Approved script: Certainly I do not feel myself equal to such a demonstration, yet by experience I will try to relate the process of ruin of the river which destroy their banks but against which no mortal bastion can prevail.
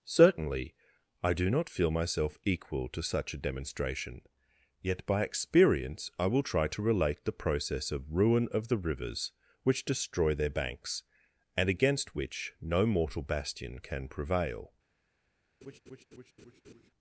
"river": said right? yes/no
no